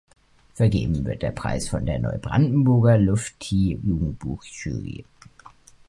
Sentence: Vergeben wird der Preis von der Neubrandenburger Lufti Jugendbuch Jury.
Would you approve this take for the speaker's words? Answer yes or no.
yes